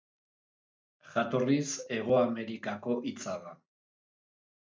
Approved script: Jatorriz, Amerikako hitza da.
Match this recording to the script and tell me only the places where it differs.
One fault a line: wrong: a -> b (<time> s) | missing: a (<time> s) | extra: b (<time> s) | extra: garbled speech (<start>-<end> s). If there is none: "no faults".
extra: Hego (2.0 s)